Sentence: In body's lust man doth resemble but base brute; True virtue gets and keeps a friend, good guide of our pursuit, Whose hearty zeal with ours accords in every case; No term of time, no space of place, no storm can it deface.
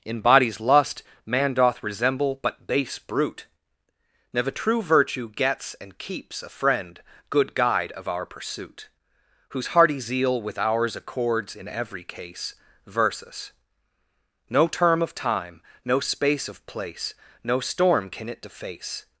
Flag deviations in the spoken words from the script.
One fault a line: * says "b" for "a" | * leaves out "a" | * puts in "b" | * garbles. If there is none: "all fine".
* puts in "never"
* puts in "versus"